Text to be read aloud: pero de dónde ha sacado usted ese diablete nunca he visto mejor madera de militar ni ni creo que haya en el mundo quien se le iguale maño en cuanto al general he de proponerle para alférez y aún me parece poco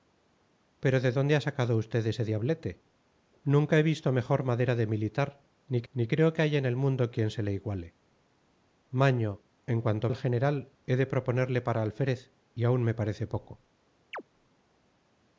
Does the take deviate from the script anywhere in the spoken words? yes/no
no